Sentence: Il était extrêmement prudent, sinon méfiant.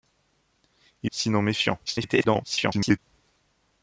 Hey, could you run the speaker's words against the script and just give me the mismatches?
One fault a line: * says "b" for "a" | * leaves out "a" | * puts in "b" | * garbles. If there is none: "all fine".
* leaves out "était extrêmement prudent"
* garbles